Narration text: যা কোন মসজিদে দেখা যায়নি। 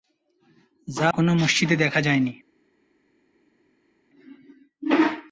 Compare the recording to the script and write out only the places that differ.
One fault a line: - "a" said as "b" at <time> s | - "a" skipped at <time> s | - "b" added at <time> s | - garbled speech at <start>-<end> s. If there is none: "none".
none